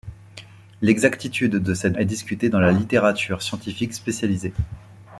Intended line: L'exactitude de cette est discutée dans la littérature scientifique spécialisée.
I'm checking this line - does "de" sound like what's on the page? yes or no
yes